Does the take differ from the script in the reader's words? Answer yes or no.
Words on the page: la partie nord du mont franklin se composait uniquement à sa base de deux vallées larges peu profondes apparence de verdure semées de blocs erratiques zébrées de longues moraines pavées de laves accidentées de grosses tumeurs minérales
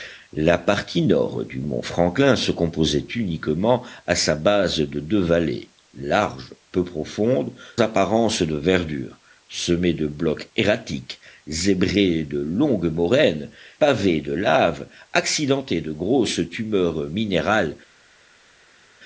no